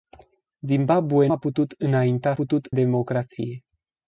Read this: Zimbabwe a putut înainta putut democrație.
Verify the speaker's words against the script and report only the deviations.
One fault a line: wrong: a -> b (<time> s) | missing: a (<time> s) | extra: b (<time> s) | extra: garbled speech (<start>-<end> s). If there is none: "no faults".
no faults